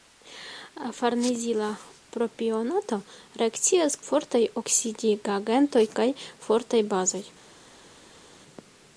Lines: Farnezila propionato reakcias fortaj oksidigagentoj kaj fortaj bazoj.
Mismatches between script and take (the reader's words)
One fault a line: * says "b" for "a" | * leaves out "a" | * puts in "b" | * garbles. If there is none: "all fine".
all fine